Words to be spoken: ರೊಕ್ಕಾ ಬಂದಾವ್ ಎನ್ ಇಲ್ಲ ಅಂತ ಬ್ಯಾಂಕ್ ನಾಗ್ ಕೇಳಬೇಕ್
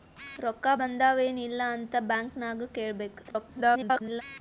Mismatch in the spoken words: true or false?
true